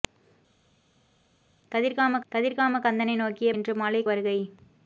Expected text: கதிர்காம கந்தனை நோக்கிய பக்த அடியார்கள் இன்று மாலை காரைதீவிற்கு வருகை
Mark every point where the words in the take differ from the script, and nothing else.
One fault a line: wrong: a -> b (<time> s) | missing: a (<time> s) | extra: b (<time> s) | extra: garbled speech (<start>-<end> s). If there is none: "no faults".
extra: கதிர்காம (2.3 s)
missing: பக்த அடியார்கள் (3.5 s)
missing: காரைதீவிற்கு (4.0 s)